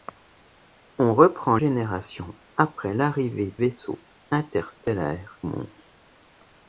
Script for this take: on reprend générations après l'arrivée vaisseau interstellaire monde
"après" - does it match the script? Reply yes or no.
yes